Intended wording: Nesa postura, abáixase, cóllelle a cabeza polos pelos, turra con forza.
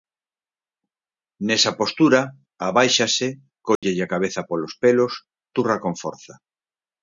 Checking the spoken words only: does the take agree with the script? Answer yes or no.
yes